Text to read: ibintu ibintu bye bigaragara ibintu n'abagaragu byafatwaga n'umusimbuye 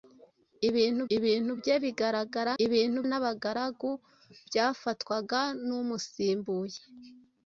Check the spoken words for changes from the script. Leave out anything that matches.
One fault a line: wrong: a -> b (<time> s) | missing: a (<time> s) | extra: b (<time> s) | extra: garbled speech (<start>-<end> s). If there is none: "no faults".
no faults